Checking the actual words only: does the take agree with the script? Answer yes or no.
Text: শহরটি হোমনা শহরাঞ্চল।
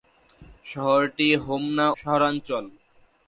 yes